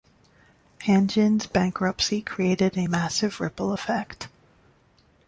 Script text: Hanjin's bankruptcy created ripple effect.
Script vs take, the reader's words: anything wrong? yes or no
yes